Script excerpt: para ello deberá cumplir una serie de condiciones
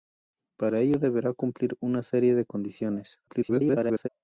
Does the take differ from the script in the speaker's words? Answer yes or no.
yes